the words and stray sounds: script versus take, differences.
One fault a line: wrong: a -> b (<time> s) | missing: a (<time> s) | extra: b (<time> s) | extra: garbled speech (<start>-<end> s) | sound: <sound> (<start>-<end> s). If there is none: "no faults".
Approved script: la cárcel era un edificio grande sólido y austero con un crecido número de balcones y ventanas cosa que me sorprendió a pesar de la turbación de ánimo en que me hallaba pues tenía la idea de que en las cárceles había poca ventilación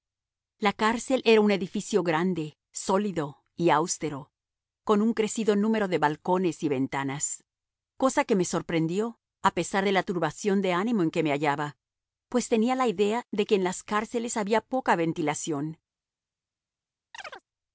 sound: chirp (17.1-17.4 s)